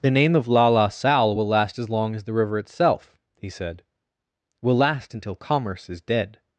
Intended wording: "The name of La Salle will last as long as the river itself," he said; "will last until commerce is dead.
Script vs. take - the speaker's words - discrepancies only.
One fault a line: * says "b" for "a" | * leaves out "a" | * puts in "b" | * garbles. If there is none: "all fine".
* puts in "La"